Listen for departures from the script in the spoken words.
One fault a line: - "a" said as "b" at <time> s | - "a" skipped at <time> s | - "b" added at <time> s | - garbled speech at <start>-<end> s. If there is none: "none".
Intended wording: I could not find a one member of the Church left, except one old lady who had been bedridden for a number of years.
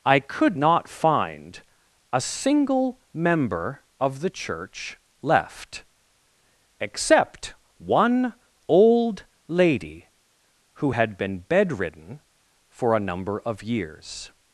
- "one" said as "single" at 2.2 s